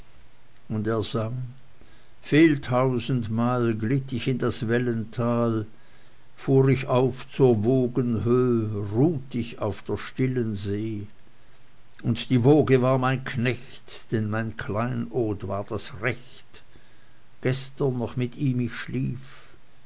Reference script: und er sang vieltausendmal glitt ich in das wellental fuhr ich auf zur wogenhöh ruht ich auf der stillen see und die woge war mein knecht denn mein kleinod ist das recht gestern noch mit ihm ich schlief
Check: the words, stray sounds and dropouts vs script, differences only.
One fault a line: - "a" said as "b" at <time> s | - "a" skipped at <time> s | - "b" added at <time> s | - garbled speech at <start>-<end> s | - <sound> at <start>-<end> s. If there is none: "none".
- "ist" said as "war" at 15.5 s